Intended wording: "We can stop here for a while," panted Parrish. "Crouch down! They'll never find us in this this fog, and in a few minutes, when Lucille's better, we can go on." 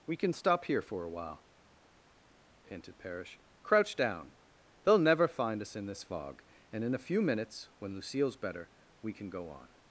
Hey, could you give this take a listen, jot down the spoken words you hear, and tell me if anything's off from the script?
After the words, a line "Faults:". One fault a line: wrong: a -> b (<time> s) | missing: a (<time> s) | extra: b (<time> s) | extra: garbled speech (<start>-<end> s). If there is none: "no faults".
"We can stop here for a while," panted Parrish. "Crouch down! They'll never find us in this fog, and in a few minutes, when Lucille's better, we can go on."
Faults:
missing: this (6.0 s)